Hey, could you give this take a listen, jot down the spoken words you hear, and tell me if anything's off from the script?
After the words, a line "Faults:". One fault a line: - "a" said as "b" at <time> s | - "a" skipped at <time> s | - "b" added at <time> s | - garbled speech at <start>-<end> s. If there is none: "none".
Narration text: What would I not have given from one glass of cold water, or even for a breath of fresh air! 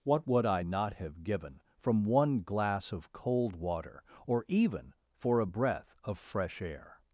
What would I not have given from one glass of cold water, or even for a breath of fresh air!
Faults:
none